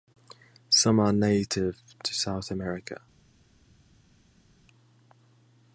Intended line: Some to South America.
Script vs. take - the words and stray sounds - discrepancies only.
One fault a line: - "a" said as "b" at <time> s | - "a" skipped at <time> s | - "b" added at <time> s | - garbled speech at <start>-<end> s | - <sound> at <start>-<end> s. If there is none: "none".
- "are native" added at 1.0 s